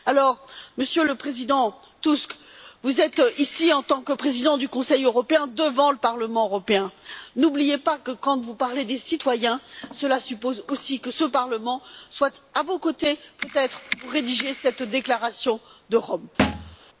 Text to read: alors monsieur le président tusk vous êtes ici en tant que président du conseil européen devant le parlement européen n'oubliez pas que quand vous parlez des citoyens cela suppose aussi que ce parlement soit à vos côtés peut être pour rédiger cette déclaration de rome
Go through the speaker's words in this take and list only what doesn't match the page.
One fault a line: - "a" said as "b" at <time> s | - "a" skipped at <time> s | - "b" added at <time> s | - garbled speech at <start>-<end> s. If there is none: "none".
none